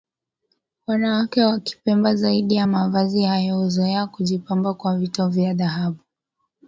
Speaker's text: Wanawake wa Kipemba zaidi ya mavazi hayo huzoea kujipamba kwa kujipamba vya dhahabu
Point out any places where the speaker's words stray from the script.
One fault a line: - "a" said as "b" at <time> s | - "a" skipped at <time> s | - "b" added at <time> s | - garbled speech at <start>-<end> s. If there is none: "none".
- "kujipamba" said as "vito" at 5.0 s